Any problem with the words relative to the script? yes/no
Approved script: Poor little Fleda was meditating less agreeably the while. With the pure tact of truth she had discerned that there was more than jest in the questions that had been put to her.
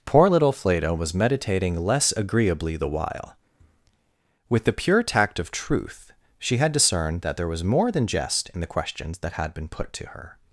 no